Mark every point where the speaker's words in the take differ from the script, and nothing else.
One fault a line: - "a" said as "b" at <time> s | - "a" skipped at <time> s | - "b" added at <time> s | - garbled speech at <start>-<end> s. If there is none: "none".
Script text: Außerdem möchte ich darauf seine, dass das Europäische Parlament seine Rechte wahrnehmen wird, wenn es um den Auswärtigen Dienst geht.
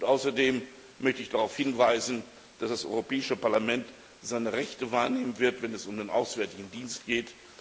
- "seine" said as "hinweisen" at 1.6 s